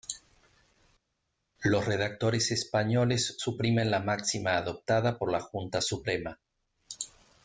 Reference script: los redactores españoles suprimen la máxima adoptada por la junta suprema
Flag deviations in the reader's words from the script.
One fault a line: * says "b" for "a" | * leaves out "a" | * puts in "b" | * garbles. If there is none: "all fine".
all fine